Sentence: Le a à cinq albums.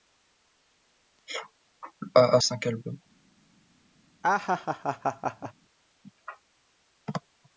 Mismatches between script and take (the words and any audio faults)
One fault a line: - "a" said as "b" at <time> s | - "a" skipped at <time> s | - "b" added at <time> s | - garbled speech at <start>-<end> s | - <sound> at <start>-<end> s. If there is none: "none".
- laugh at 4.2-5.5 s